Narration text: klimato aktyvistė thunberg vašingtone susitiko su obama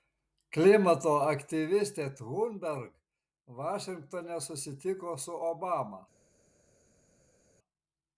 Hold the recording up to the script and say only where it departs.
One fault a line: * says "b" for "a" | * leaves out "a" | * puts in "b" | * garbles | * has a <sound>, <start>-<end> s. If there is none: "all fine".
all fine